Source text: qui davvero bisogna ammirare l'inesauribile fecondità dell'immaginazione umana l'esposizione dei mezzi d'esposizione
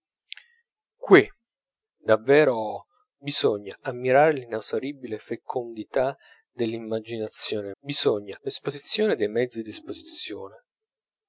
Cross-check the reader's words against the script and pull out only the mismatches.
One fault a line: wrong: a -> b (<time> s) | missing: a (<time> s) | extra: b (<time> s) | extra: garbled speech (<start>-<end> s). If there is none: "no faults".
wrong: umana -> bisogna (7.8 s)